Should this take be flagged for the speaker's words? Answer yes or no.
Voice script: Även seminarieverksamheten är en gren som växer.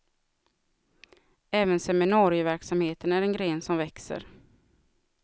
no